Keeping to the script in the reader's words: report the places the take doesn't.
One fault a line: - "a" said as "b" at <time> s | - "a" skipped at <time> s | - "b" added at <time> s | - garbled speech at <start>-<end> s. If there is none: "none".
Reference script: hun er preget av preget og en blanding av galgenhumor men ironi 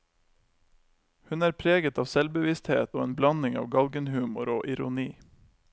- "preget" said as "selvbevissthet" at 2.1 s
- "men" said as "og" at 4.5 s